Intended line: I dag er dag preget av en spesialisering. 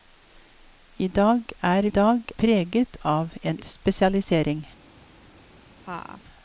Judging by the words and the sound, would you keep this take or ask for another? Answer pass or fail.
fail